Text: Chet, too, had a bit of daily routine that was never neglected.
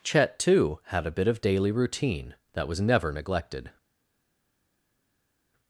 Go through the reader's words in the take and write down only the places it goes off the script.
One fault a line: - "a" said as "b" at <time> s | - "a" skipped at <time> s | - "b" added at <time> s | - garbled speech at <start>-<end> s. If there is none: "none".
none